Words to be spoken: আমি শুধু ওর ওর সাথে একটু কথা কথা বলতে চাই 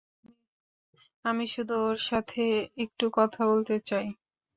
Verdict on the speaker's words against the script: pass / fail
fail